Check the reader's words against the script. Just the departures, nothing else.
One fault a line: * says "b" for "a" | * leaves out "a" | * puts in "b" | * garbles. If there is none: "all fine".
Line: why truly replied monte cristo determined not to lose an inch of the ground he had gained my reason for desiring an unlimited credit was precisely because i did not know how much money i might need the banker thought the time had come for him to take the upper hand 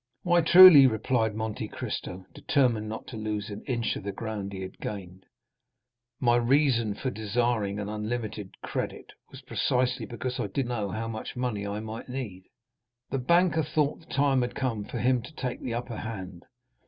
* leaves out "not"